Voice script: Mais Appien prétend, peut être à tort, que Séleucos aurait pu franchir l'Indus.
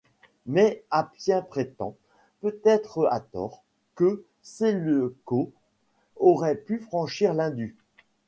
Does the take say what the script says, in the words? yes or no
yes